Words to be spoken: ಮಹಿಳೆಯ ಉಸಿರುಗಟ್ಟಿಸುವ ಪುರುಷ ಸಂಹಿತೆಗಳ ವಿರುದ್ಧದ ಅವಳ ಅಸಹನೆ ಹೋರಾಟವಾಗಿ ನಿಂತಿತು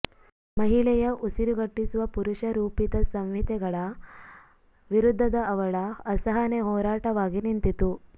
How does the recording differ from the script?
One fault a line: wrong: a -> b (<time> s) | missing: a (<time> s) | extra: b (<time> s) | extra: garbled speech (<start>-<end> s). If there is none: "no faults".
extra: ರೂಪಿತ (2.5 s)